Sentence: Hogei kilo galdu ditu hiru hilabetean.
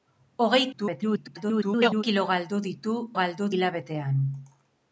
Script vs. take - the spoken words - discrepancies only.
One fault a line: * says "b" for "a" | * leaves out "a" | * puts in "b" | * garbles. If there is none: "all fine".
* garbles
* says "galdu" for "hiru"